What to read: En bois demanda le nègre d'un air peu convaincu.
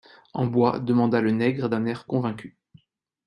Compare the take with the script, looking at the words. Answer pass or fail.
fail